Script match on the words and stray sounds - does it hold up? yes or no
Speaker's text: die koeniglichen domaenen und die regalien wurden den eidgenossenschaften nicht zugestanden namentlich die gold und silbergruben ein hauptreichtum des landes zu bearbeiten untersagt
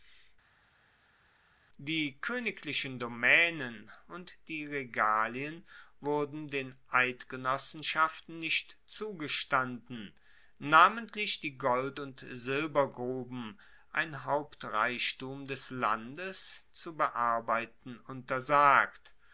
yes